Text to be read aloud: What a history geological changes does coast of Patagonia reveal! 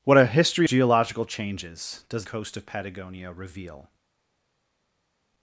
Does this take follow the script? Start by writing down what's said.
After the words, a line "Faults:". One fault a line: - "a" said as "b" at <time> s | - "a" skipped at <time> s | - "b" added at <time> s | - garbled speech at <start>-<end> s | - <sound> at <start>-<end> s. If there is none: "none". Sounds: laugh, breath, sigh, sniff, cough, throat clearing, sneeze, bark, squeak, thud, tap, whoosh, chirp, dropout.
What a history geological changes does coast of Patagonia reveal!
Faults:
none